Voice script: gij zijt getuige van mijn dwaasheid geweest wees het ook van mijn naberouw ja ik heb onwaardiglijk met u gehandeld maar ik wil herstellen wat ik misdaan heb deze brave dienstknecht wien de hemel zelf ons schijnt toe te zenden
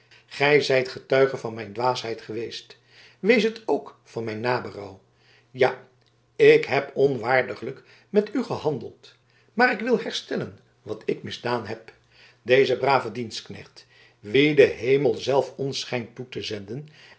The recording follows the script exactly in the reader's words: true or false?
true